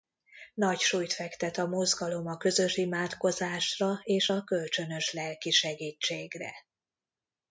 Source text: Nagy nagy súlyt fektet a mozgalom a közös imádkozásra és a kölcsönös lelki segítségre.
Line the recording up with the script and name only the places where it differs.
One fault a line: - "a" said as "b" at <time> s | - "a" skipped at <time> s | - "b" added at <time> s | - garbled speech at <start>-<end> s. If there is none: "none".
- "nagy" skipped at 0.8 s